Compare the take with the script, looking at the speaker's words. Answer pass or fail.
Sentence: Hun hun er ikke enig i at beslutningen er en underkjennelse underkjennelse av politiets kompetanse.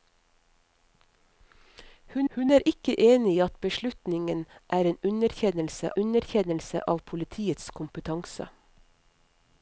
pass